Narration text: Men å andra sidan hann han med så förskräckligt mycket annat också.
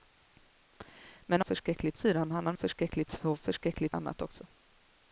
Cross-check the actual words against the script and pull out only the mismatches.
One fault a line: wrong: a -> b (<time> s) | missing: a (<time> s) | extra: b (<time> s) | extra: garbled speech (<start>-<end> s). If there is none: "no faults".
wrong: andra -> förskräckligt (1.4 s)
wrong: med -> förskräckligt (2.5 s)
missing: mycket (4.0 s)